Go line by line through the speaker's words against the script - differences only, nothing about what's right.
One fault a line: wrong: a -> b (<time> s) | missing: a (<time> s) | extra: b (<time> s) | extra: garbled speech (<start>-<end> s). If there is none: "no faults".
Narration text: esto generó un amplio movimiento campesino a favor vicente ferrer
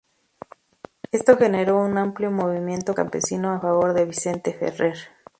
extra: de (3.9 s)